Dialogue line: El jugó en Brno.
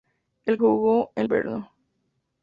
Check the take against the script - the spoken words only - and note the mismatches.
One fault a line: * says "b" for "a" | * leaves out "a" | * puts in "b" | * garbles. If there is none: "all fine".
all fine